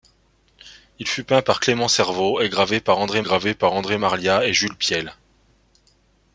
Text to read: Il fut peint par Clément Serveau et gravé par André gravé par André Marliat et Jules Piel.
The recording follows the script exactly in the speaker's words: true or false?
true